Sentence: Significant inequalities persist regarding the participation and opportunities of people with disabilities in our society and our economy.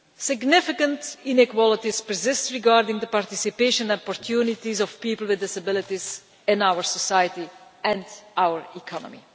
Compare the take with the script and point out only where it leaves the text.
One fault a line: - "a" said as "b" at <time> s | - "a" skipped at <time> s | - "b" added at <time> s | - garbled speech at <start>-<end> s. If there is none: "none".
none